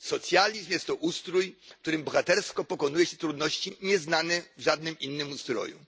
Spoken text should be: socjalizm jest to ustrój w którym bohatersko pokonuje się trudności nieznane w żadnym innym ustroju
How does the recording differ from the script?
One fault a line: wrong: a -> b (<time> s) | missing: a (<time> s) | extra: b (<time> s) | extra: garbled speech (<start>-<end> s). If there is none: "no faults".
no faults